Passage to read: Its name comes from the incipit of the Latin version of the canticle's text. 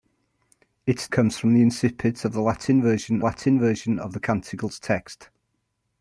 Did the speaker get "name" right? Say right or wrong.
wrong